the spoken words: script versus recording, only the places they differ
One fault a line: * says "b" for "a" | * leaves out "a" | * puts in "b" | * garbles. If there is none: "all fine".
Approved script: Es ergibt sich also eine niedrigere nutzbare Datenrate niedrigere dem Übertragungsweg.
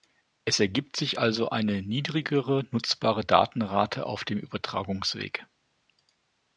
* says "auf" for "niedrigere"